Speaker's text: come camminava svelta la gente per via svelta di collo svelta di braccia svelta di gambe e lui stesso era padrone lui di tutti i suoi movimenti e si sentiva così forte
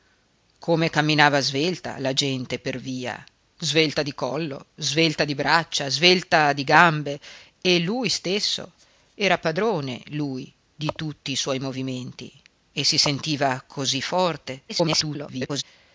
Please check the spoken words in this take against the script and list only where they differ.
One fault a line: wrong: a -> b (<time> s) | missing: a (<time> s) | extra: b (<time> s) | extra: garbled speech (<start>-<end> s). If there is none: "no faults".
extra: garbled speech (14.7-15.6 s)